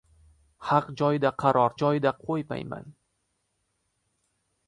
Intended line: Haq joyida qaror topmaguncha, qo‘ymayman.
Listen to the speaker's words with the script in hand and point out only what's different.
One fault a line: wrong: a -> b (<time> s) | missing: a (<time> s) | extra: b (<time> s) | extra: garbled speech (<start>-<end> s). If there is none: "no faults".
wrong: topmaguncha -> joyida (1.8 s)